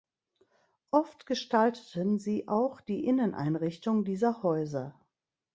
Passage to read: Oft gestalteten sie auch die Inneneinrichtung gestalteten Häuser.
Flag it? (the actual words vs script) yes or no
yes